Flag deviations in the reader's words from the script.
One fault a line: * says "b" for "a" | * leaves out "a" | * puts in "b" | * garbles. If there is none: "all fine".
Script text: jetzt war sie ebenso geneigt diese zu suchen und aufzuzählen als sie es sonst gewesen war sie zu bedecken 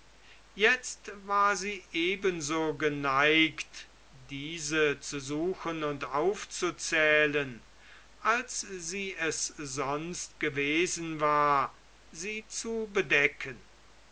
all fine